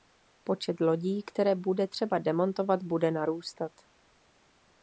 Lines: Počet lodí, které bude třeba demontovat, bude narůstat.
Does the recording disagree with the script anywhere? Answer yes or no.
no